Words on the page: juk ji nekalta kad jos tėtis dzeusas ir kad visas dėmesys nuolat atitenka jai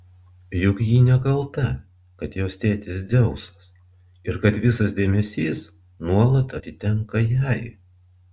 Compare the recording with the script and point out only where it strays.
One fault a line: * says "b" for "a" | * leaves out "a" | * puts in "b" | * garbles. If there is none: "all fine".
all fine